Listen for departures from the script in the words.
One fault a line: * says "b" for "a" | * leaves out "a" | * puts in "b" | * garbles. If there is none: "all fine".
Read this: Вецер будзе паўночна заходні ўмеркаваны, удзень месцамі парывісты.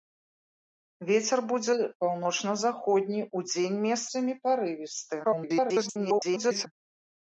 * leaves out "ўмеркаваны"
* garbles